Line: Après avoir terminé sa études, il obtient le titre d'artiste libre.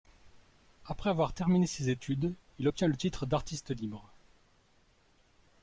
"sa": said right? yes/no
no